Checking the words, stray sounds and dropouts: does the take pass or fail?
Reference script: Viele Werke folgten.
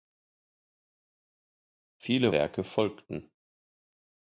pass